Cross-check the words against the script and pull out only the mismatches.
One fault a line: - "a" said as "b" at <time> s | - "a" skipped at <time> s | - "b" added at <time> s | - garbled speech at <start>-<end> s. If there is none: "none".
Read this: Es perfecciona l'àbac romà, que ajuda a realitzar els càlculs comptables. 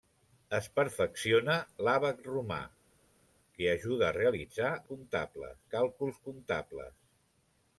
- "els" said as "comptables" at 4.9 s